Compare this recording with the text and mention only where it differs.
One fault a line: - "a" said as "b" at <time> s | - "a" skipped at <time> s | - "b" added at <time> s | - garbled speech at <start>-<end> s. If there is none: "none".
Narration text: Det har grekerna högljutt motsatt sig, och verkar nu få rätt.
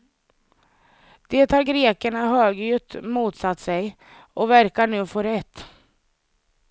none